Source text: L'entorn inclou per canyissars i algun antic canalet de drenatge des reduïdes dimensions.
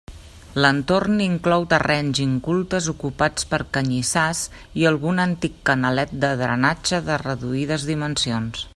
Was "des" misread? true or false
true